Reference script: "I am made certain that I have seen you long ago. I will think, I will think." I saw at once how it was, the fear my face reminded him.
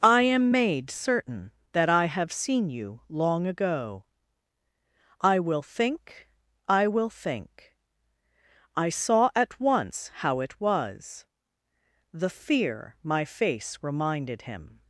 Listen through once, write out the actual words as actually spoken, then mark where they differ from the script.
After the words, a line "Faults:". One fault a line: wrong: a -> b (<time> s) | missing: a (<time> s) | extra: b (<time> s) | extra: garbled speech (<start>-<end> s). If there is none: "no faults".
"I am made certain that I have seen you long ago. I will think, I will think." I saw at once how it was, the fear my face reminded him.
Faults:
no faults